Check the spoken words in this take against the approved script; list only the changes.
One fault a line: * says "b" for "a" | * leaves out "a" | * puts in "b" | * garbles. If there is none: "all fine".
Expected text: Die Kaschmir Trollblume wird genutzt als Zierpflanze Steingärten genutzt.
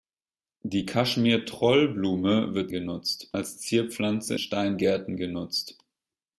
all fine